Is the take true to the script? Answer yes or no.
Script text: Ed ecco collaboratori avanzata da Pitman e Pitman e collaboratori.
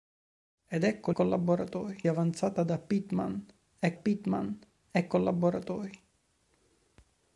yes